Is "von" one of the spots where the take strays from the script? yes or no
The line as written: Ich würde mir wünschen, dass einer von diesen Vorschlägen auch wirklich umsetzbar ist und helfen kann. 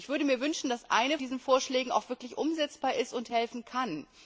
yes